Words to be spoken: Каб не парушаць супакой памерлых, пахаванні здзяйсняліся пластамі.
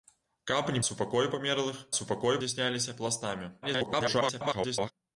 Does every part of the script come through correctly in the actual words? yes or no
no